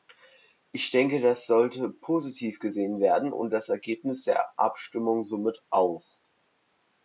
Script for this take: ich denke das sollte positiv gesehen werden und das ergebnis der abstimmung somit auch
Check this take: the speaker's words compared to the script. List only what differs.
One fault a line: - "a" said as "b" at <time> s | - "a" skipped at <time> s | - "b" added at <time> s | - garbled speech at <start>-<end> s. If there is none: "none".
none